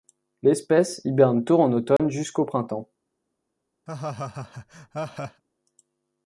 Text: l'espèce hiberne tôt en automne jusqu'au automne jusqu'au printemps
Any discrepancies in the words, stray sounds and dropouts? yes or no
yes